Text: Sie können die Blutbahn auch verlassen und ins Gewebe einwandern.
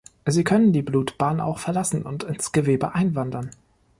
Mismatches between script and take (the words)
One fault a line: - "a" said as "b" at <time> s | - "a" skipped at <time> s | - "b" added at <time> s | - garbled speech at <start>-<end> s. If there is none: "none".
none